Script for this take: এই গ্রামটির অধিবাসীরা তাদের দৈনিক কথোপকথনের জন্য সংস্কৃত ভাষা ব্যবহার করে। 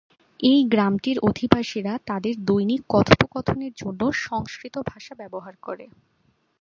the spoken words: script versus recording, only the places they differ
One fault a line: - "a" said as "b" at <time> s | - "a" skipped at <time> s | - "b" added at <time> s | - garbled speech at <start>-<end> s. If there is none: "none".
none